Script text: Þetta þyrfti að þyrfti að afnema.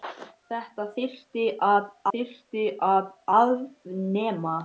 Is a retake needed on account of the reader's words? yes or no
no